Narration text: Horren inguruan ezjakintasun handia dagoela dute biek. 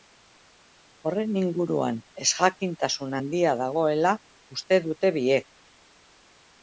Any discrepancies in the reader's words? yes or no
yes